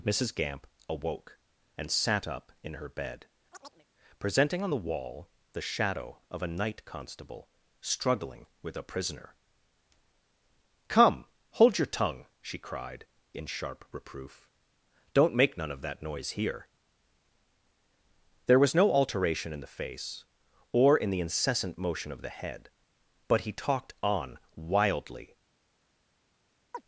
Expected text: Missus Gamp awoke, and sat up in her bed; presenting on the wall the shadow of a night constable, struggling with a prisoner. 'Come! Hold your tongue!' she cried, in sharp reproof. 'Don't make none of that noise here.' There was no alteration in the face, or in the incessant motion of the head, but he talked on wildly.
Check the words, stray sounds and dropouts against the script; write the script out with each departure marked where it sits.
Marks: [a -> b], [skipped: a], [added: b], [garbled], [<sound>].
Missus Gamp awoke, and sat up in her bed; [chirp] presenting on the wall the shadow of a night constable, struggling with a prisoner. 'Come! Hold your tongue!' she cried, in sharp reproof. 'Don't make none of that noise here.' There was no alteration in the face, or in the incessant motion of the head, but he talked on wildly. [chirp]